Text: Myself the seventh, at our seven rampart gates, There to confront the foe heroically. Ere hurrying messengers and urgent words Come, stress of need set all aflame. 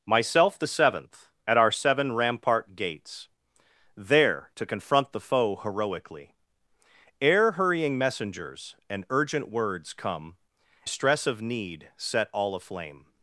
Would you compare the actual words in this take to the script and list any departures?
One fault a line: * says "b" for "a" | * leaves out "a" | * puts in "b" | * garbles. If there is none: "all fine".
all fine